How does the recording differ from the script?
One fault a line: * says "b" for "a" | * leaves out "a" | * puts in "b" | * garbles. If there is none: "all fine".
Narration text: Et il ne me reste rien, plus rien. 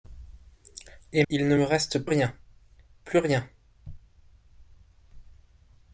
all fine